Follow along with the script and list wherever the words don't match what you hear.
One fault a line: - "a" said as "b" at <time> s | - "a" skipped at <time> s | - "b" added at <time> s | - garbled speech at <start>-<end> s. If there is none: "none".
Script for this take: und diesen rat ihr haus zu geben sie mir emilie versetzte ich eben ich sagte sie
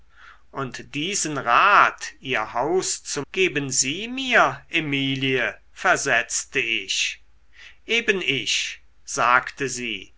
none